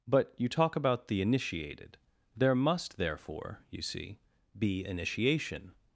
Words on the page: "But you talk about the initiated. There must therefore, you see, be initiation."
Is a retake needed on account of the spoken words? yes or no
no